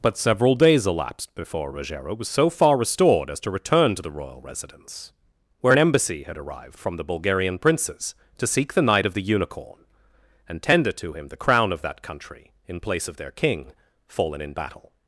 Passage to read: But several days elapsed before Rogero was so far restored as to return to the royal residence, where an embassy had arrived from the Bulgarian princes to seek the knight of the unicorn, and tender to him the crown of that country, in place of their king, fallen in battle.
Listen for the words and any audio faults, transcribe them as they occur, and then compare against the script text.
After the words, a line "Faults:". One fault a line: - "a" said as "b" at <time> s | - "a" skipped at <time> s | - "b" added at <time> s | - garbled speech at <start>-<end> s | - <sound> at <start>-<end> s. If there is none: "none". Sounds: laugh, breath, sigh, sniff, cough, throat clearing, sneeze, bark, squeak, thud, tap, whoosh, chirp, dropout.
But several days elapsed before Rogero was so far restored as to return to the royal residence, where an embassy had arrived from the Bulgarian princes to seek the knight of the unicorn, and tender to him the crown of that country, in place of their king, fallen in battle.
Faults:
none